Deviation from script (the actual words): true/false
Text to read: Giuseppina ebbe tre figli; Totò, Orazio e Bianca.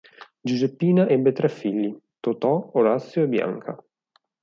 false